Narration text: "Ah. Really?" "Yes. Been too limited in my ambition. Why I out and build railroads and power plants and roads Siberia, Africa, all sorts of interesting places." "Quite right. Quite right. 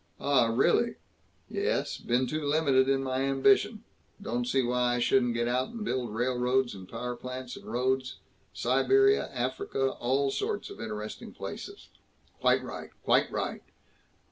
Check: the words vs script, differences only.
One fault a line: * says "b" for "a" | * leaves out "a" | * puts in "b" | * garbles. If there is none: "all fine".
* puts in "Don't see"
* puts in "shouldn't get"